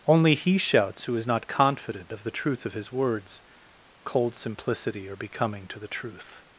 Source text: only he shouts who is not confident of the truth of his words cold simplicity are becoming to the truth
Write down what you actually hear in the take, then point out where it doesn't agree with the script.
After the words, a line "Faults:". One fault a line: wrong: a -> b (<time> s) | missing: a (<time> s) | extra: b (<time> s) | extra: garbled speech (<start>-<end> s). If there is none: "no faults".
only he shouts who is not confident of the truth of his words cold simplicity are becoming to the truth
Faults:
no faults